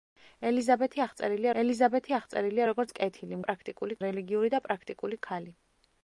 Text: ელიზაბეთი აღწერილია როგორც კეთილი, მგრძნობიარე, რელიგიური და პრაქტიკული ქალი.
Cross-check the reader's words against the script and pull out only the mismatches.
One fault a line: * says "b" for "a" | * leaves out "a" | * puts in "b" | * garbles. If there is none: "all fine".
* puts in "ელიზაბეთი აღწერილია"
* says "პრაქტიკული" for "მგრძნობიარე"